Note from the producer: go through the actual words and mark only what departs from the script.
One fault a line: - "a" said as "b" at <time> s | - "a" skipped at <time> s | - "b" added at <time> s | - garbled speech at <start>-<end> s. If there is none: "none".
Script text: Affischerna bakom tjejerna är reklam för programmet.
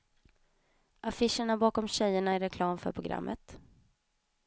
none